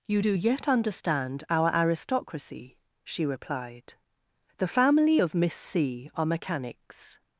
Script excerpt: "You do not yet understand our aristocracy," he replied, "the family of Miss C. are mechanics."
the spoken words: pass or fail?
fail